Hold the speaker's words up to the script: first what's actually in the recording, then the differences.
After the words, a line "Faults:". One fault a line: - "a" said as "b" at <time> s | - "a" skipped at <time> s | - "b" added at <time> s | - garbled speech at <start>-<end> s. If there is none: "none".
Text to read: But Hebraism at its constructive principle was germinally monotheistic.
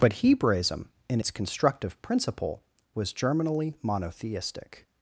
But Hebraism in its constructive principle was germinally monotheistic.
Faults:
- "at" said as "in" at 1.1 s